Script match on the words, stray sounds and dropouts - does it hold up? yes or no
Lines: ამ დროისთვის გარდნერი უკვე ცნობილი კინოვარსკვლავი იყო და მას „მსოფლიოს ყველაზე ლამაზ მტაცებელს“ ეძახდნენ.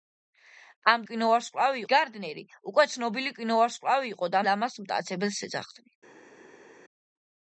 no